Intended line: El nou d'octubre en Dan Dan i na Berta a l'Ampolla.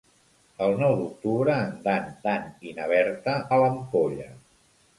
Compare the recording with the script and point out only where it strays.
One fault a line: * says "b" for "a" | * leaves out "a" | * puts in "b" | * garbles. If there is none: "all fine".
all fine